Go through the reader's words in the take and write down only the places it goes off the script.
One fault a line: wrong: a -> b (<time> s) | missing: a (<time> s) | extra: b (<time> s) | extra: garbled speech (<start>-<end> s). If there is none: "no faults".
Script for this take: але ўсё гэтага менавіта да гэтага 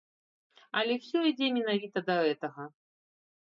wrong: гэтага -> ідзе (1.3 s)